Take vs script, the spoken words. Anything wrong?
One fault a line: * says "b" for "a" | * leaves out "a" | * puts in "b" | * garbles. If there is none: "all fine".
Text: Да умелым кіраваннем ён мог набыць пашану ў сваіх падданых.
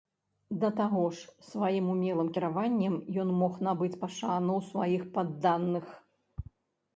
* puts in "таго ж сваім"